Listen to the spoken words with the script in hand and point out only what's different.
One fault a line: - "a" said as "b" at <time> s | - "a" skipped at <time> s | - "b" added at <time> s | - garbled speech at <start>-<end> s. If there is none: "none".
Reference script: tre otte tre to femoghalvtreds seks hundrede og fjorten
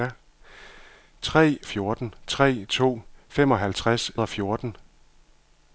- "otte" said as "fjorten" at 1.7 s
- "seks hundrede" skipped at 4.2 s